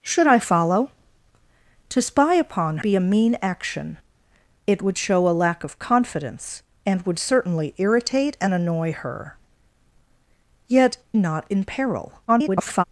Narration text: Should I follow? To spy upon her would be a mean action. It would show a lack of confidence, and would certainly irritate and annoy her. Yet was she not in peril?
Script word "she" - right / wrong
wrong